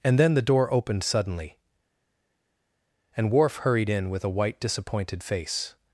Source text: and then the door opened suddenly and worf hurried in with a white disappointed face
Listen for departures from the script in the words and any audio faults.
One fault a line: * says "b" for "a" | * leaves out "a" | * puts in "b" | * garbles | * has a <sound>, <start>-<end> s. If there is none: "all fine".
all fine